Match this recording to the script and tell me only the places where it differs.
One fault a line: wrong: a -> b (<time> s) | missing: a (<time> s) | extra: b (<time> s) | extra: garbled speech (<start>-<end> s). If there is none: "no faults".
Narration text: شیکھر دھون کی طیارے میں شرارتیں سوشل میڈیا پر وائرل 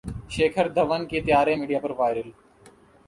missing: میں شرارتیں سوشل (1.6 s)